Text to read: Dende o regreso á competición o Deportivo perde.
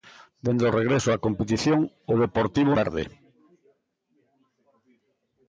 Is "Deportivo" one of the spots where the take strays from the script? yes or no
no